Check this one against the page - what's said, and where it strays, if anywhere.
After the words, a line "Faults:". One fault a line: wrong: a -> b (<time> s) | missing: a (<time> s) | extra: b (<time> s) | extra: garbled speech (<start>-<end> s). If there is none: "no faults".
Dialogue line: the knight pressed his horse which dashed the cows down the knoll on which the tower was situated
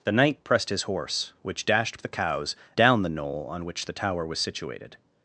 the knight pressed his horse which dashed the cows down the knoll on which the tower was situated
Faults:
no faults